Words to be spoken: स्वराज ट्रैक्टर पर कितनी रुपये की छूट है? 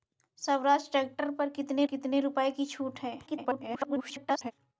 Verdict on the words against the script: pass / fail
fail